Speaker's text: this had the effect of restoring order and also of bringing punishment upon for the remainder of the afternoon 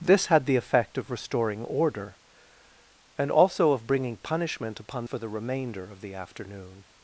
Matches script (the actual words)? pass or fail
pass